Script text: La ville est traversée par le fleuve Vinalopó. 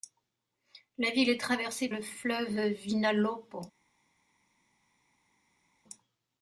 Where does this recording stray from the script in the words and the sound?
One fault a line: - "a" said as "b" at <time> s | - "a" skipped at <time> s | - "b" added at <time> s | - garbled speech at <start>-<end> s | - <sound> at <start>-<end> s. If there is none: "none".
- "par" skipped at 1.9 s